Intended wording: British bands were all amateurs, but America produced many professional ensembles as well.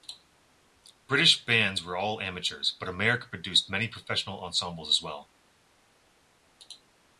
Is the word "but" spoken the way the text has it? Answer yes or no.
yes